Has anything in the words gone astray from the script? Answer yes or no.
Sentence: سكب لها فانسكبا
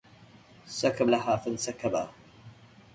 no